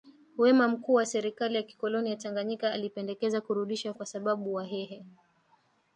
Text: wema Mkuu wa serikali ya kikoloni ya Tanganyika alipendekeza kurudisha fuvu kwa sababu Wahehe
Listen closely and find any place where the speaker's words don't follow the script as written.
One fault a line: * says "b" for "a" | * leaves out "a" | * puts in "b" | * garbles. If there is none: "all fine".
* leaves out "fuvu"